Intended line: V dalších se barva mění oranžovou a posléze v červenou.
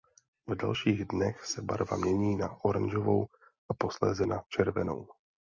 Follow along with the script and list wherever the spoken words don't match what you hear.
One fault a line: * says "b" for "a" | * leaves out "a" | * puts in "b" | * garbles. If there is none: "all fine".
* puts in "dnech"
* puts in "na"
* says "na" for "v"